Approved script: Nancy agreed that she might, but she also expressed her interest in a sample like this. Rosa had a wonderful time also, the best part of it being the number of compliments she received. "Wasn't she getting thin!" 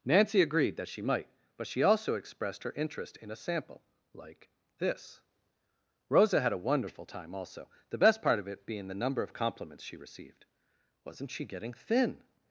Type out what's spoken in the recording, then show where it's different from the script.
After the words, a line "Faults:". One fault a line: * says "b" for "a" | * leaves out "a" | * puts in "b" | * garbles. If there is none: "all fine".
Nancy agreed that she might, but she also expressed her interest in a sample like this. Rosa had a wonderful time also, the best part of it being the number of compliments she received. "Wasn't she getting thin!"
Faults:
all fine